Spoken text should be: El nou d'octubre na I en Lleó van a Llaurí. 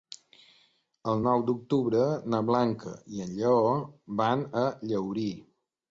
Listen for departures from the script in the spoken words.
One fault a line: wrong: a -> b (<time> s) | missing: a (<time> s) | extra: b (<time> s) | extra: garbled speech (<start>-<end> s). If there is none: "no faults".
extra: Blanca (2.5 s)